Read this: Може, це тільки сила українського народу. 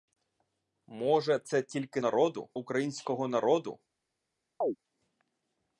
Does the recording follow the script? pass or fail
fail